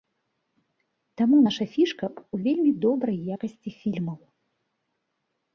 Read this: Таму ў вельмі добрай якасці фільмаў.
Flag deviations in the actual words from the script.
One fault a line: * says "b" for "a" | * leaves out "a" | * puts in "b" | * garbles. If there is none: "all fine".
* puts in "наша фішка"